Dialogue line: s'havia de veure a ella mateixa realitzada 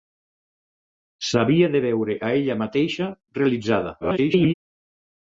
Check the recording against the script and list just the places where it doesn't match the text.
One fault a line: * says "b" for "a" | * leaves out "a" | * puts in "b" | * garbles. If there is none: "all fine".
* garbles